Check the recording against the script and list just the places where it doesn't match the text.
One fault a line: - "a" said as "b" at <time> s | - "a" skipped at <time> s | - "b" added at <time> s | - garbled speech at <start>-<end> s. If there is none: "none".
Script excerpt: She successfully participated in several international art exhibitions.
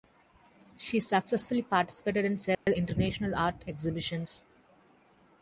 none